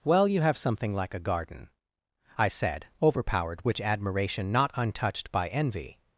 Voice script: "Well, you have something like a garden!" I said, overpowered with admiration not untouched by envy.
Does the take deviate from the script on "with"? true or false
true